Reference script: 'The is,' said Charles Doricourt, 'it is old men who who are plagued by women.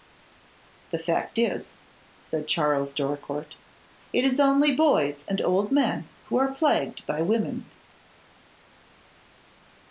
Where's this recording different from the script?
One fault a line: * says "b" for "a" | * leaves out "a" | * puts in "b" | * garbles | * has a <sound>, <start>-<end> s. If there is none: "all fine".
* puts in "fact"
* puts in "only boys and"
* leaves out "who"